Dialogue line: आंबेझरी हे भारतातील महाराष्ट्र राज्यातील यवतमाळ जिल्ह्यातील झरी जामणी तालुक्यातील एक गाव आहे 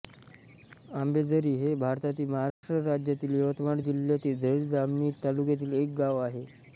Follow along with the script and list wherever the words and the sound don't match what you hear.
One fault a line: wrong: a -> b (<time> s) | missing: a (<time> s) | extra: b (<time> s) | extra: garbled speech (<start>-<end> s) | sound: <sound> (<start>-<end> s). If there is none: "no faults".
sound: dropout (2.5-2.6 s)